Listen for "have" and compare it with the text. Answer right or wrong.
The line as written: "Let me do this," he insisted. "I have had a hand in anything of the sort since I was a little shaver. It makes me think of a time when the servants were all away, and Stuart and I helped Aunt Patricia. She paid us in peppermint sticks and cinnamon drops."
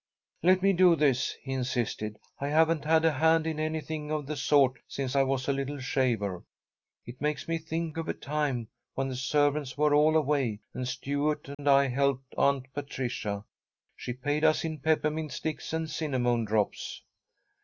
wrong